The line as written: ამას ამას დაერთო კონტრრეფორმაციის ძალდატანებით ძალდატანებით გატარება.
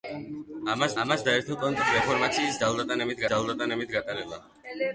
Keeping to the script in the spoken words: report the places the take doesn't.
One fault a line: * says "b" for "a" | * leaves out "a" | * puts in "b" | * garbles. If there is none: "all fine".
all fine